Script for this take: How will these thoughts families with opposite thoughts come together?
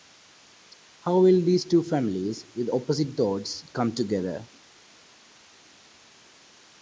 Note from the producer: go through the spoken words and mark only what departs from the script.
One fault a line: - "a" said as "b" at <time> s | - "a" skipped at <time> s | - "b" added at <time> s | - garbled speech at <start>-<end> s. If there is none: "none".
- "thoughts" said as "two" at 1.6 s